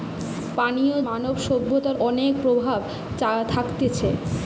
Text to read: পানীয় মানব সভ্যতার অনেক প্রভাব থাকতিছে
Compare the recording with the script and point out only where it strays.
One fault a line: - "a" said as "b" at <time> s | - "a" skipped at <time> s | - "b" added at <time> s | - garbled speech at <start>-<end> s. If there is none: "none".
none